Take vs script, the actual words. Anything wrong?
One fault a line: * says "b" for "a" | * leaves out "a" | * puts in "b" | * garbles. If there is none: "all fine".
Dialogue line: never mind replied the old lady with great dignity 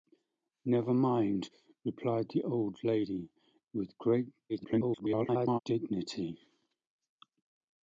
* garbles